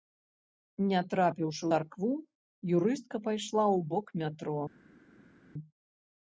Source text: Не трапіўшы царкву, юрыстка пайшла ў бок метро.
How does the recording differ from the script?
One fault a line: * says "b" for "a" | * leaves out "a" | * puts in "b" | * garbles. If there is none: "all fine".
all fine